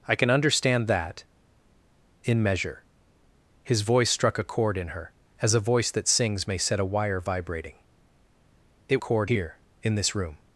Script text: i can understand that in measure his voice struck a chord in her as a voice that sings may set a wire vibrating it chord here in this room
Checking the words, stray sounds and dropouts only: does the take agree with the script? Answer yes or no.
yes